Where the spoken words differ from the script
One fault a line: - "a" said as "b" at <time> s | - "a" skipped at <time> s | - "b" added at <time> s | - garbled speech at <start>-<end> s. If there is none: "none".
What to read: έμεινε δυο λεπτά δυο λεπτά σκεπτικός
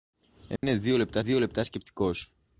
none